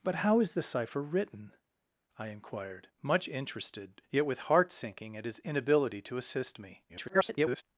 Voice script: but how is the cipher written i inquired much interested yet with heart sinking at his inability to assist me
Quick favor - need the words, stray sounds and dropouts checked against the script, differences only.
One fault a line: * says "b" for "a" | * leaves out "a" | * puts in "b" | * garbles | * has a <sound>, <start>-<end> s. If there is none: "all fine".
* garbles